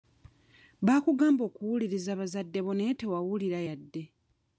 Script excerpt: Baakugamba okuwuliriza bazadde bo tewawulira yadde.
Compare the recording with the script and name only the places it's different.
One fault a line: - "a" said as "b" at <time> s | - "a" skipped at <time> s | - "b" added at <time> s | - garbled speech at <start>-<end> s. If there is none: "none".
- "naye" added at 2.8 s